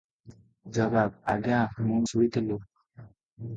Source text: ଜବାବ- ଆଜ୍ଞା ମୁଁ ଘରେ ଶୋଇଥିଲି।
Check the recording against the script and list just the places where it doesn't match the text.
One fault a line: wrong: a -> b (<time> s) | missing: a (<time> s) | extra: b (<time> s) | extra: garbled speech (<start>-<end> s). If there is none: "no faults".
missing: ଘରେ (2.0 s)